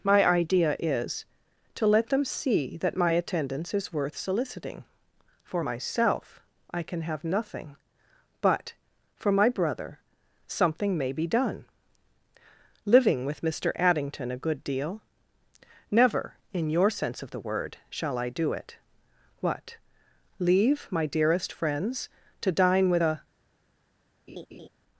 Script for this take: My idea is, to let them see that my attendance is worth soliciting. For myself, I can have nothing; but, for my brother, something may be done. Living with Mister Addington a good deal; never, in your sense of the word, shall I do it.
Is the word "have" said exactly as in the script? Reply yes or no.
yes